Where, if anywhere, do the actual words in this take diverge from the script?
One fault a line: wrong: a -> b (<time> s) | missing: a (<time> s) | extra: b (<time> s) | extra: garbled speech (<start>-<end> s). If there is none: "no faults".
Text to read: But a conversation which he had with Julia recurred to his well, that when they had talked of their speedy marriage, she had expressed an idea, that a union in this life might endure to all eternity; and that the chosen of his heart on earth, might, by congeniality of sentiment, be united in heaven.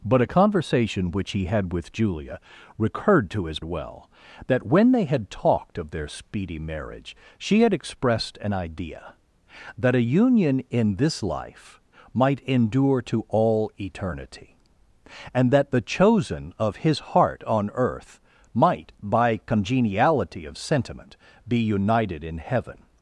no faults